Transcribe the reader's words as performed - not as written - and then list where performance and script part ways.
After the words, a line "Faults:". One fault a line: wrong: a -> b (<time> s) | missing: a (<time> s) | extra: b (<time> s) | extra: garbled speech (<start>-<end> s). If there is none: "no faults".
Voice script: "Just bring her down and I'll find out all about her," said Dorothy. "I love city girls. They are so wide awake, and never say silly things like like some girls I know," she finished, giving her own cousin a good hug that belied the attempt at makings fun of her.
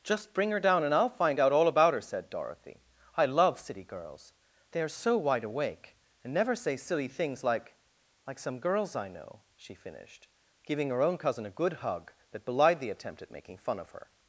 "Just bring her down and I'll find out all about her," said Dorothy. "I love city girls. They are so wide awake, and never say silly things like like some girls I know," she finished, giving her own cousin a good hug that belied the attempt at making fun of her.
Faults:
wrong: makings -> making (13.3 s)